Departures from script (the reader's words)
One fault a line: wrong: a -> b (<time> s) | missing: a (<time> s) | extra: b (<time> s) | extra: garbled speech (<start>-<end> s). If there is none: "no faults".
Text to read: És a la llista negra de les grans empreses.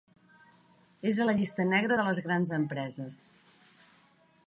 no faults